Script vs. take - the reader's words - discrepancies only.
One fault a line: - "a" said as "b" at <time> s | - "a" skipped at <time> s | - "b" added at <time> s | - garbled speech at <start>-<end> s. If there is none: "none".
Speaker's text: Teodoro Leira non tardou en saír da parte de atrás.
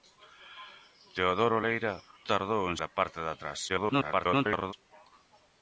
- "non" skipped at 1.9 s
- "saír" skipped at 2.8 s
- garbled speech at 3.7-4.7 s